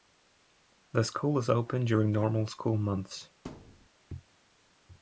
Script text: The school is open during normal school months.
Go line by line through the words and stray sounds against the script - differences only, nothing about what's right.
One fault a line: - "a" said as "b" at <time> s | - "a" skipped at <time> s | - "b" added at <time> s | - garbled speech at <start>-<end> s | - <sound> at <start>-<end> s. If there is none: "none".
- thud at 3.5-3.9 s